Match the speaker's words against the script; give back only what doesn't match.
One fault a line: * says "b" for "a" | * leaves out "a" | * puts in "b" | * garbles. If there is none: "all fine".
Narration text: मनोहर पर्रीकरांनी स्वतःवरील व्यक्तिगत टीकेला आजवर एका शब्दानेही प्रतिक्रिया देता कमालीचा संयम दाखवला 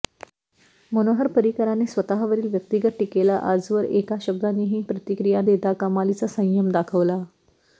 all fine